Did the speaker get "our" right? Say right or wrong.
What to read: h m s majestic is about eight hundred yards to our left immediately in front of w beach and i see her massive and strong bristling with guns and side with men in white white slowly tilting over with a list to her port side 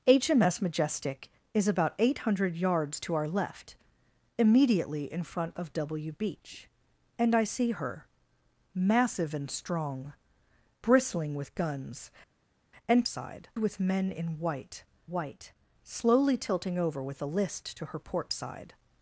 right